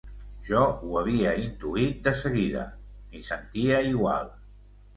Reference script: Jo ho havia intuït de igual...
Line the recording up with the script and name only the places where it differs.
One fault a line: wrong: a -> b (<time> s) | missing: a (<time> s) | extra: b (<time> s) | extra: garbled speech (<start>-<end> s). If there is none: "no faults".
extra: seguida m'hi sentia (2.2 s)